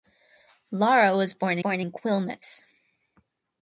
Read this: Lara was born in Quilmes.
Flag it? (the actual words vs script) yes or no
yes